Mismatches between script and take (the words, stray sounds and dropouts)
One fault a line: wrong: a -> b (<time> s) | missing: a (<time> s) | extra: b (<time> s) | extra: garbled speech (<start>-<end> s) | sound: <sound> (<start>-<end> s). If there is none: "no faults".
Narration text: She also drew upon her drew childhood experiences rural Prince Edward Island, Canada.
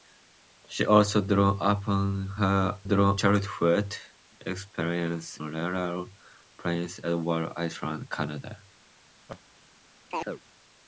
sound: laugh (9.3-9.4 s)
sound: chirp (10.1-10.4 s)